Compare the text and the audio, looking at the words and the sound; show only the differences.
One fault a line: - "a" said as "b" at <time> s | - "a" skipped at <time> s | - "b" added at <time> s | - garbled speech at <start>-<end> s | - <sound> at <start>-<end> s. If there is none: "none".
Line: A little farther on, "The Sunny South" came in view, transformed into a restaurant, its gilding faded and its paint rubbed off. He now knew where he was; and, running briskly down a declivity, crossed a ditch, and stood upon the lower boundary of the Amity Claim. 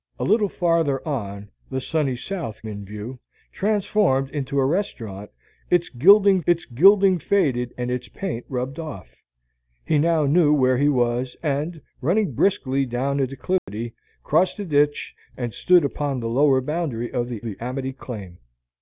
- "came" skipped at 2.6 s
- "its gilding" added at 6.4 s
- dropout at 13.6-13.7 s
- "the" added at 17.4 s